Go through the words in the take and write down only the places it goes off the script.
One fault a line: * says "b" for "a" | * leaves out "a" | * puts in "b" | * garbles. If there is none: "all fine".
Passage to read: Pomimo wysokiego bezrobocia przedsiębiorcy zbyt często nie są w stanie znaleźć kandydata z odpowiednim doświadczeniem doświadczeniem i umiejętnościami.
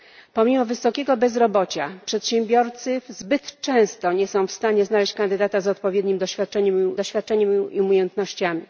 all fine